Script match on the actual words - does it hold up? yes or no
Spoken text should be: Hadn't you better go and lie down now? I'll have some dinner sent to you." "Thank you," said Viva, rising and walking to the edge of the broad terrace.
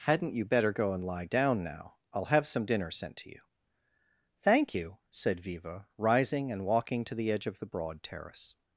yes